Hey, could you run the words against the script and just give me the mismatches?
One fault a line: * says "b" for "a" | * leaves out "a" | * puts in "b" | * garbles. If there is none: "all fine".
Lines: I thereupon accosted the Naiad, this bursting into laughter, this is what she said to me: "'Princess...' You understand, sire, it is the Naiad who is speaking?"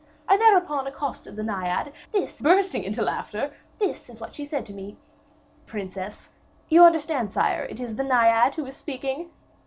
all fine